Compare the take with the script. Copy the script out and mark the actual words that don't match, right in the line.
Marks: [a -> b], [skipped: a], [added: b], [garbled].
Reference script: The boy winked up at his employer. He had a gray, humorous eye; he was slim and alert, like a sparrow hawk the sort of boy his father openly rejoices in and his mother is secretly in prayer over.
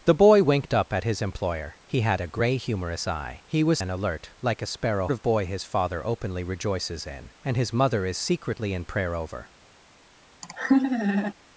The boy winked up at his employer. He had a gray, humorous eye; he was [skipped: slim] and alert, like a sparrow [skipped: hawk the sort] of boy his father openly rejoices in and his mother is secretly in prayer over.